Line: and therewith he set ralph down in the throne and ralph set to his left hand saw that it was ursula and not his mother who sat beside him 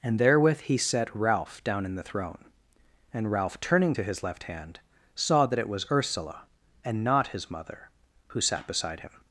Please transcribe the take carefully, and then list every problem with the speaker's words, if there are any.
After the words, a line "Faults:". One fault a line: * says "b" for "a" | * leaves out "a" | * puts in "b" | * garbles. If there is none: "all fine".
and therewith he set ralph down in the throne and ralph turning to his left hand saw that it was ursula and not his mother who sat beside him
Faults:
* says "turning" for "set"